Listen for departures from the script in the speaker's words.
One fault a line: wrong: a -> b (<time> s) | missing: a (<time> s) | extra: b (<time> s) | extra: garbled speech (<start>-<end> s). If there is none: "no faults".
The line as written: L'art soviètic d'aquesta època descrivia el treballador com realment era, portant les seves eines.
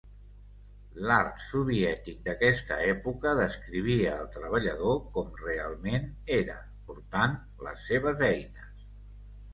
no faults